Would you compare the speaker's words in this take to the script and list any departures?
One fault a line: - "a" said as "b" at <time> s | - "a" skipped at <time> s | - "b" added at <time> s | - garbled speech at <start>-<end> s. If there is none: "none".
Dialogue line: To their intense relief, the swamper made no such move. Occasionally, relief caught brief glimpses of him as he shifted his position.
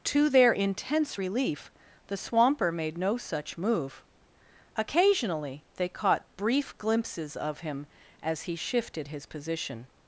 - "relief" said as "they" at 5.7 s